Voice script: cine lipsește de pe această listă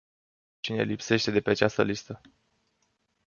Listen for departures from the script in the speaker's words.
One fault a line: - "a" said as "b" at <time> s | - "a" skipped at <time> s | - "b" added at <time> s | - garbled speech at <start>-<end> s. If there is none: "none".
none